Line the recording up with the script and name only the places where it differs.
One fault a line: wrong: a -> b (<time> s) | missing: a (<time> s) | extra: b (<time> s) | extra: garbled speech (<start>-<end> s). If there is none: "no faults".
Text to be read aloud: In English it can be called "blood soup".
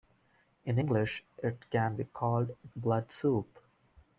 no faults